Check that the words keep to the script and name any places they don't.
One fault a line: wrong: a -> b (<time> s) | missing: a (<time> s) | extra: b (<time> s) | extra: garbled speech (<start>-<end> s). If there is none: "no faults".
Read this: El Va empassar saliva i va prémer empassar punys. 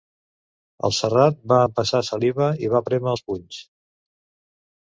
extra: Serrat (1.0 s)
wrong: empassar -> els (3.1 s)